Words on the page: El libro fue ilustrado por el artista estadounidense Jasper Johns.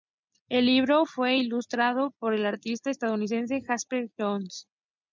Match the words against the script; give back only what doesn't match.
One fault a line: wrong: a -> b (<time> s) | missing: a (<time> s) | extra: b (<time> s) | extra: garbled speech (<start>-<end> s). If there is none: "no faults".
no faults